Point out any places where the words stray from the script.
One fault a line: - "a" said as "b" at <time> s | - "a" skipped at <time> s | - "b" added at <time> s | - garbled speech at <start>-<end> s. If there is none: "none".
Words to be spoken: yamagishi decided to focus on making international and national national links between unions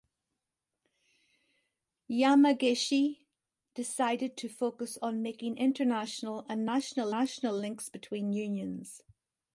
none